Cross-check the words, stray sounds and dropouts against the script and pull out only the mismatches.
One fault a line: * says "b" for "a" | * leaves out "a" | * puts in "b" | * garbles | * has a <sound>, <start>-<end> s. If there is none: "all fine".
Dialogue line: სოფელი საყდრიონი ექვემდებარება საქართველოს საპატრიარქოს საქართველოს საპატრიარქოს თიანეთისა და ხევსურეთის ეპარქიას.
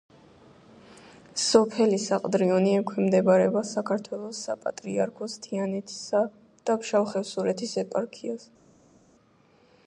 * leaves out "საქართველოს საპატრიარქოს"
* puts in "ფშავ"